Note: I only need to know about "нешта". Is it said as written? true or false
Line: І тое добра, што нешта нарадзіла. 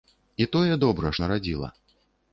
false